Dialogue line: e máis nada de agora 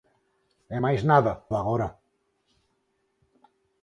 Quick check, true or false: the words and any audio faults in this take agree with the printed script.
true